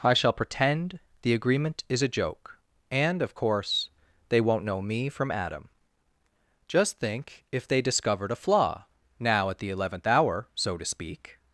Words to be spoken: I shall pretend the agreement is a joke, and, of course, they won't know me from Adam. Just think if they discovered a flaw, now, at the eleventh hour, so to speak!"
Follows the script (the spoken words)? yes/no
yes